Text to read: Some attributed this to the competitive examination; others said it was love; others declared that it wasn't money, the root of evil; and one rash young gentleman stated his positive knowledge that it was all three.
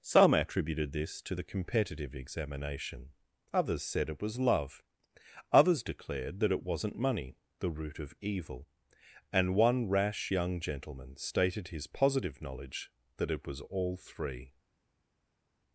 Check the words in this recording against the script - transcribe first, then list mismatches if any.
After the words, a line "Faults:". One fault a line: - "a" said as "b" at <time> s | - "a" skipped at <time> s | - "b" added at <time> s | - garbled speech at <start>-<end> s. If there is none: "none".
Some attributed this to the competitive examination; others said it was love; others declared that it wasn't money, the root of evil; and one rash young gentleman stated his positive knowledge that it was all three.
Faults:
none